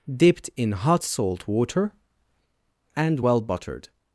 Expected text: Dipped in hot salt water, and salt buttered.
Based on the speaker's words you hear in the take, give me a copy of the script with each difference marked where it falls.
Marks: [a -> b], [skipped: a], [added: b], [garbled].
Dipped in hot salt water, and [salt -> well] buttered.